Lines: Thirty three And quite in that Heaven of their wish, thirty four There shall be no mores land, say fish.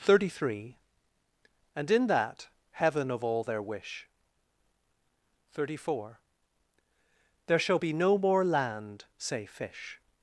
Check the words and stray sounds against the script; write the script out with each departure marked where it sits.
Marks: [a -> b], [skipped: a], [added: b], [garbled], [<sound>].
Thirty three And [skipped: quite] in that Heaven of [added: all] their wish, thirty four There shall be no [mores -> more] land, say fish.